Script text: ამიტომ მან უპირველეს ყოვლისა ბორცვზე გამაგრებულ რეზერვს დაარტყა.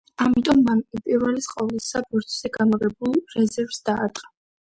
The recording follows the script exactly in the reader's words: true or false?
true